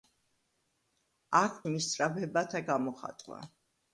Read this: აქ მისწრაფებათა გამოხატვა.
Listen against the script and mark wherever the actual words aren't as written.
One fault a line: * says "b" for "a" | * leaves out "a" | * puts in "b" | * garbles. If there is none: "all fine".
all fine